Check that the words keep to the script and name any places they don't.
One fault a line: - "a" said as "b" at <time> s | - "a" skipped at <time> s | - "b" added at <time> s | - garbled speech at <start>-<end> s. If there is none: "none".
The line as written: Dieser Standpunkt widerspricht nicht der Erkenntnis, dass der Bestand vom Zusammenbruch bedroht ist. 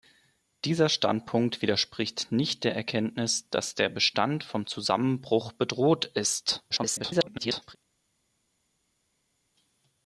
- garbled speech at 6.7-7.8 s